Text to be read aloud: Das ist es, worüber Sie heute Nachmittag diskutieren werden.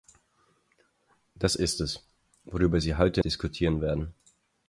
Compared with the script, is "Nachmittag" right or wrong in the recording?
wrong